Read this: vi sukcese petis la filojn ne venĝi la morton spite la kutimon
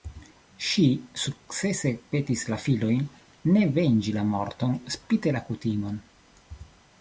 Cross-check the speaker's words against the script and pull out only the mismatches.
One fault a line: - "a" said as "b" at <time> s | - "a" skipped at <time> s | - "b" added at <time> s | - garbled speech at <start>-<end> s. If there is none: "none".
- "vi" said as "ŝi" at 0.7 s